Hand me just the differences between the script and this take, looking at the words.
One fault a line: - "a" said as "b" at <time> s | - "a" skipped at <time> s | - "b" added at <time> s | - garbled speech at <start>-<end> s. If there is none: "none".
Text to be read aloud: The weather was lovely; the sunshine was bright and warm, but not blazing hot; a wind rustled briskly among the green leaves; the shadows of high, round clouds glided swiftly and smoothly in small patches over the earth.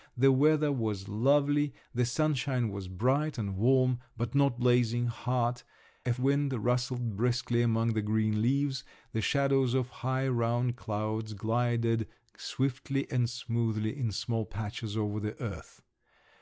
none